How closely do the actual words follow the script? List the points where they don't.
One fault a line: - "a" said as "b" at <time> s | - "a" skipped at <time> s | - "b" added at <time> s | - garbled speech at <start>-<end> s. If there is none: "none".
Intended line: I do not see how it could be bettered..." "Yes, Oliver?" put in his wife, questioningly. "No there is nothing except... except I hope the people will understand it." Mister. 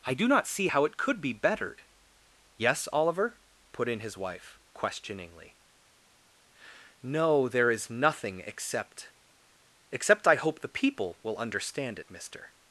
none